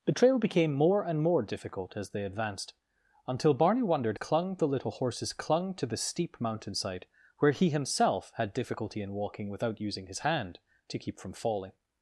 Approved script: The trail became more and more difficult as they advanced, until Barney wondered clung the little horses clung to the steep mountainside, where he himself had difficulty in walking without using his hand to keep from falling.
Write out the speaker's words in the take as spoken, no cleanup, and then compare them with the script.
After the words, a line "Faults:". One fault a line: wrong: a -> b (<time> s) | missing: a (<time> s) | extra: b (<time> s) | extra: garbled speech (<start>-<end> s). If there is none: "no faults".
The trail became more and more difficult as they advanced, until Barney wondered clung the little horses clung to the steep mountainside, where he himself had difficulty in walking without using his hand to keep from falling.
Faults:
no faults